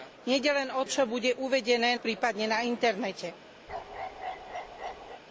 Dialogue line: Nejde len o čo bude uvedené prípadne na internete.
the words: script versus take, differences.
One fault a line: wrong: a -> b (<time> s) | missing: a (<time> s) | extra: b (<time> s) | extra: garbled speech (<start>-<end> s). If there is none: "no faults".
no faults